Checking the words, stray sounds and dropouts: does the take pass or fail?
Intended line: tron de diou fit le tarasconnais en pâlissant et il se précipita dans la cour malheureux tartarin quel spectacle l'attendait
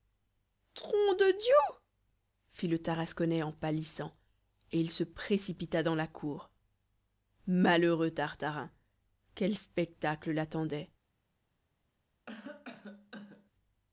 fail